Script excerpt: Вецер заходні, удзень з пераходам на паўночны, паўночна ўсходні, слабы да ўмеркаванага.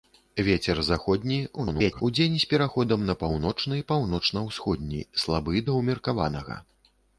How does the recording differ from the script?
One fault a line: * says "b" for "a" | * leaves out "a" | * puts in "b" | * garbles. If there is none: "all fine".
* garbles